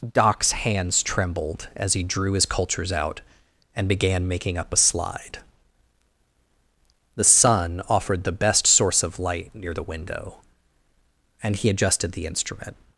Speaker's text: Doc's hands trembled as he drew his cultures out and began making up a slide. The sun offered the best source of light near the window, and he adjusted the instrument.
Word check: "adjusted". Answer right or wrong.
right